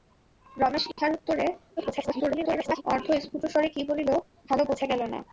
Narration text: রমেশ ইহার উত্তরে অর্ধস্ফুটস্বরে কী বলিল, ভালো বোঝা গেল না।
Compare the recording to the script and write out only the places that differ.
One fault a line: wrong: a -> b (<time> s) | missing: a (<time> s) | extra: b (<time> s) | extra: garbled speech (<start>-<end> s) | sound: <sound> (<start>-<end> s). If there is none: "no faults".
sound: dropout (0.9-1.0 s)
extra: garbled speech (1.8-2.8 s)